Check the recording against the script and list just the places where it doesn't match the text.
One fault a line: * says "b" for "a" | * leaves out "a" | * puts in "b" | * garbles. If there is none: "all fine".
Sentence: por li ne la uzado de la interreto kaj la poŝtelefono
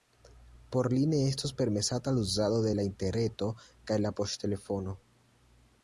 * puts in "estos permesata"